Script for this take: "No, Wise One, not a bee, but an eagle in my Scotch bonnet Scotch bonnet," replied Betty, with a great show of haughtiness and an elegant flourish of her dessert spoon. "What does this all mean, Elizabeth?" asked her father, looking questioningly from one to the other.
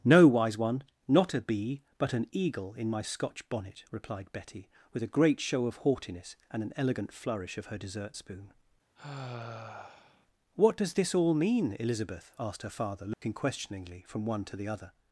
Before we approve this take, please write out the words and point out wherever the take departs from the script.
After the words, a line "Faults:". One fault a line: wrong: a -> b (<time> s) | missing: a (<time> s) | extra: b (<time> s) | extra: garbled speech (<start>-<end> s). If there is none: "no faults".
"No, Wise One, not a bee, but an eagle in my Scotch bonnet," replied Betty, with a great show of haughtiness and an elegant flourish of her dessert spoon. "What does this all mean, Elizabeth?" asked her father, looking questioningly from one to the other.
Faults:
missing: Scotch bonnet (3.8 s)